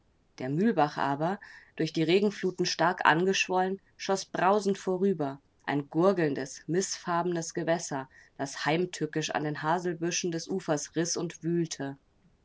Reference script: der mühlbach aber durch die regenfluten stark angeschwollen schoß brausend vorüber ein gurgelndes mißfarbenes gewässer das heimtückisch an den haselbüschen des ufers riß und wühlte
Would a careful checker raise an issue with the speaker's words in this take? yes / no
no